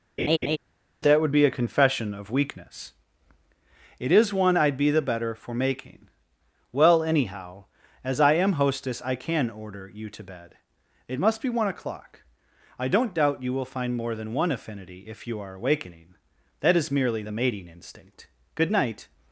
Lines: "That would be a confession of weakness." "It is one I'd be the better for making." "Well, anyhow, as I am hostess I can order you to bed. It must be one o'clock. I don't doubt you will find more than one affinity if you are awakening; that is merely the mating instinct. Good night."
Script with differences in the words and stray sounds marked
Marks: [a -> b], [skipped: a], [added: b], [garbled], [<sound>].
[laugh] "That would be a confession of weakness." "It is one I'd be the better for making." "Well, anyhow, as I am hostess I can order you to bed. It must be one o'clock. I don't doubt you will find more than one affinity if you are awakening; that is merely the mating instinct. Good night."